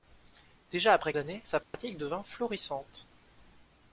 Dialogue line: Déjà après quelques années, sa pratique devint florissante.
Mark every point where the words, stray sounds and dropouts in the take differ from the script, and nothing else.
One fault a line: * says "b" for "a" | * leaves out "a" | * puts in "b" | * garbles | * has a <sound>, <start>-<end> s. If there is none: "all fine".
* leaves out "quelques"
* has a dropout, 1.6-1.7 s